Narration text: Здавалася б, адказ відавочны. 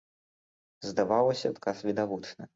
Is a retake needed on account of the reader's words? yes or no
yes